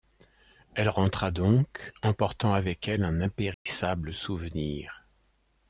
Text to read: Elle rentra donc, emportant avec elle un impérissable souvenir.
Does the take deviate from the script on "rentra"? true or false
false